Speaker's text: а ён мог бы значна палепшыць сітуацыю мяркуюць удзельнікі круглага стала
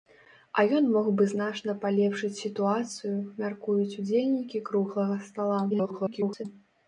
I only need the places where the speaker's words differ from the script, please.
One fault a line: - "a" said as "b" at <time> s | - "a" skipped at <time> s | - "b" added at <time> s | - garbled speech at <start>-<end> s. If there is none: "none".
- garbled speech at 5.7-6.4 s